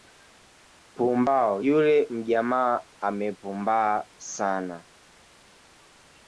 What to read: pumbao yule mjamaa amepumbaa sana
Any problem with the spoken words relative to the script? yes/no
no